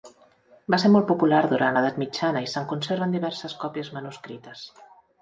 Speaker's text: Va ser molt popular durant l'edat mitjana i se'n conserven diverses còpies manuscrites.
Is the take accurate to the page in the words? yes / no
yes